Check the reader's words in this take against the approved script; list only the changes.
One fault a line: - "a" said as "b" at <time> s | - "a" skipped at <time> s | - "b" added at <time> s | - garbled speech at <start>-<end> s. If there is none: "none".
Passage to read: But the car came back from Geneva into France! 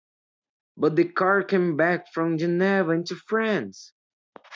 none